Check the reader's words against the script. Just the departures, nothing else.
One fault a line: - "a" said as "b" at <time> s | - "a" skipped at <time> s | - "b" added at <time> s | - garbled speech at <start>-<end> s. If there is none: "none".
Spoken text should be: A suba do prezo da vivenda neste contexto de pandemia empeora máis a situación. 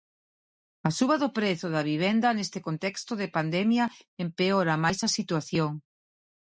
none